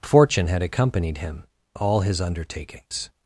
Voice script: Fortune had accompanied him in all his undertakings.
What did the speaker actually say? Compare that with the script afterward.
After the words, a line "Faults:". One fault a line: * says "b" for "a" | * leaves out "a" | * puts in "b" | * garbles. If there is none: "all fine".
Fortune had accompanied him all his undertakings.
Faults:
* leaves out "in"